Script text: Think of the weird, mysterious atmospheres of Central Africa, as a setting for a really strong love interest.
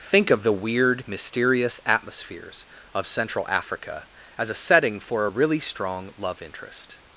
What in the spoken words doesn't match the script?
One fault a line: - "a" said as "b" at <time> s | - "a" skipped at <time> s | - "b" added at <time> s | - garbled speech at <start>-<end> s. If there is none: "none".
none